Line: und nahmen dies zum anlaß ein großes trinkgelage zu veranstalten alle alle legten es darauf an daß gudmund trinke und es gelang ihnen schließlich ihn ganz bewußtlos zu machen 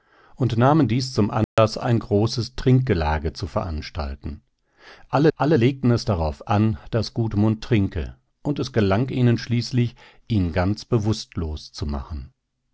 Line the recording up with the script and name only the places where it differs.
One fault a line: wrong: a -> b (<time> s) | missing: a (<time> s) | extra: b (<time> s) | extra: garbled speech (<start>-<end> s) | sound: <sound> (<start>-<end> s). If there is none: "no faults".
sound: dropout (1.4-1.6 s)